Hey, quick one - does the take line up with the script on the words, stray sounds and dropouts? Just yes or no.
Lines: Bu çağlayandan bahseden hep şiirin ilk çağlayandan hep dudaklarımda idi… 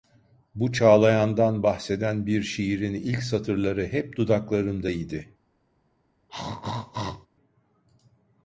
no